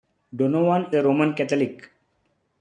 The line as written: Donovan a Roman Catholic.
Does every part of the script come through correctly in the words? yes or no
yes